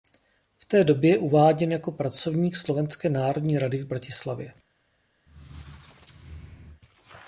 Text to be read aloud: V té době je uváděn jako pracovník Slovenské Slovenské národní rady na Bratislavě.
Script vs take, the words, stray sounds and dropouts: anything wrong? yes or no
yes